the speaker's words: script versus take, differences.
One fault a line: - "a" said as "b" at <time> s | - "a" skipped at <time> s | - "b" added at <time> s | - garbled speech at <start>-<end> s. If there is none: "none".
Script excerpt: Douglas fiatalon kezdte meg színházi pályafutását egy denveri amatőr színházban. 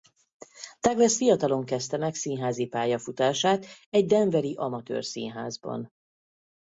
none